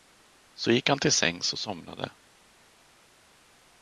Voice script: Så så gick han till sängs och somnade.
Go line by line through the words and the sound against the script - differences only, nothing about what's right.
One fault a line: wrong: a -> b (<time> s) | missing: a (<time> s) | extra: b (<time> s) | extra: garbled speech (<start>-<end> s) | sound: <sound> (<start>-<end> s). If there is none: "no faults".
missing: så (0.7 s)